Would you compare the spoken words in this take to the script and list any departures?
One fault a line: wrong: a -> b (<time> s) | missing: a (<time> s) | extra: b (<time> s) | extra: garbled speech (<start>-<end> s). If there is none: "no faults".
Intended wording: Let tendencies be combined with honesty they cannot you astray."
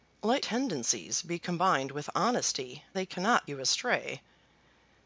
no faults